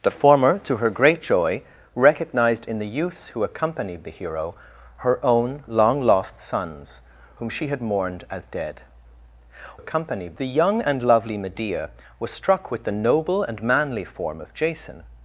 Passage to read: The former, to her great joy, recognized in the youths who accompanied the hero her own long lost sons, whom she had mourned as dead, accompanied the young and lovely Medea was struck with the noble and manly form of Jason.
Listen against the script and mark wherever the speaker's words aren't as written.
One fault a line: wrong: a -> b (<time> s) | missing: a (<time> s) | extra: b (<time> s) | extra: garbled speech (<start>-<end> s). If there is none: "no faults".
no faults